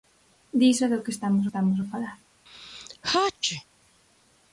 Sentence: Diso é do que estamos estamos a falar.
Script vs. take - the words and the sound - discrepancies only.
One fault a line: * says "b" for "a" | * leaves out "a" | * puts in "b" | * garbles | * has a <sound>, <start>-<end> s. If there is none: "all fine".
* has a sneeze, 2.5-3.7 s